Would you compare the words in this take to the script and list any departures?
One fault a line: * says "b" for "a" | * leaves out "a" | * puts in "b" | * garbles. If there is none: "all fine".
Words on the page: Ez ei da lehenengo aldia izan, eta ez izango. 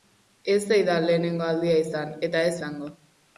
all fine